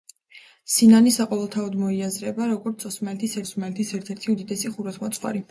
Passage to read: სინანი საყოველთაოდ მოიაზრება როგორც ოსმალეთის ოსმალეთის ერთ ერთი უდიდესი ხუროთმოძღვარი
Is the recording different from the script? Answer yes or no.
no